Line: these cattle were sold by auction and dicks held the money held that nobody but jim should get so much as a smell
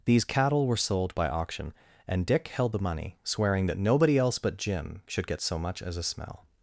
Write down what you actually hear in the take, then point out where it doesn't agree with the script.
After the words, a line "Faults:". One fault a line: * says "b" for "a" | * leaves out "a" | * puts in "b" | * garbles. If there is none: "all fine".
these cattle were sold by auction and dick held the money swearing that nobody else but jim should get so much as a smell
Faults:
* says "dick" for "dicks"
* says "swearing" for "held"
* puts in "else"